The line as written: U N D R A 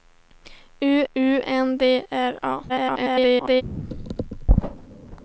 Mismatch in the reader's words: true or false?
true